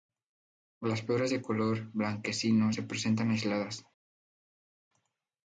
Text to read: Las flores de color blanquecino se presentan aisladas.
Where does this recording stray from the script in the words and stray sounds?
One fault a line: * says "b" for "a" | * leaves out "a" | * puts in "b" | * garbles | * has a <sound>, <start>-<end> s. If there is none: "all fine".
all fine